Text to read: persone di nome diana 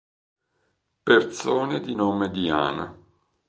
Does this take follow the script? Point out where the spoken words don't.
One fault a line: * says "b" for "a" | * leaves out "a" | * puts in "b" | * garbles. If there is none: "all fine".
all fine